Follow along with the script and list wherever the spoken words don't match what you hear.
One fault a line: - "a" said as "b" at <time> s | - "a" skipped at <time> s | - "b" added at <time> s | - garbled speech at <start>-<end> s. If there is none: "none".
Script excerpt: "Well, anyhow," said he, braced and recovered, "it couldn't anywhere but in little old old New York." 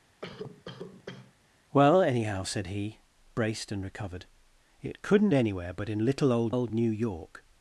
none